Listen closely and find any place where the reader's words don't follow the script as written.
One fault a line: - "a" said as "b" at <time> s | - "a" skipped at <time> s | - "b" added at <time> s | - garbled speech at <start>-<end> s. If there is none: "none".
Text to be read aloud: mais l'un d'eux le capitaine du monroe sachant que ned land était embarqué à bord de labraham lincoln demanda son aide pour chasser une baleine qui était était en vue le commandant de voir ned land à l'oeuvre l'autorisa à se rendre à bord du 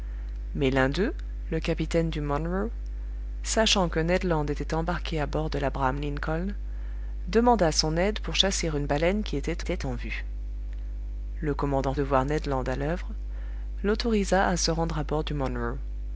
none